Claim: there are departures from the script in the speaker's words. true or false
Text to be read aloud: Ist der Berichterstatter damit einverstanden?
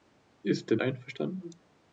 true